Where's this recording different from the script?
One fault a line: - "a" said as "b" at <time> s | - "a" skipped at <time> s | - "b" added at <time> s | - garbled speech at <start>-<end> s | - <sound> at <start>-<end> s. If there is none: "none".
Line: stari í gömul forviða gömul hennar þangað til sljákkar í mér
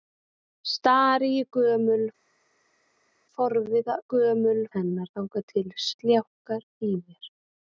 none